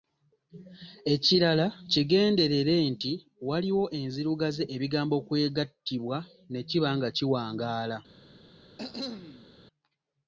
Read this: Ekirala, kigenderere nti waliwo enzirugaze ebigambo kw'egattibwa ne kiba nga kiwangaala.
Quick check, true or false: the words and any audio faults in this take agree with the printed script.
false